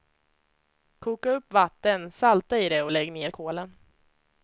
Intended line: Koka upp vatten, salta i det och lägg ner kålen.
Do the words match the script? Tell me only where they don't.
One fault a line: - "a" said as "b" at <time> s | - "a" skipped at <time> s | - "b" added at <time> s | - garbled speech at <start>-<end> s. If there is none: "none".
none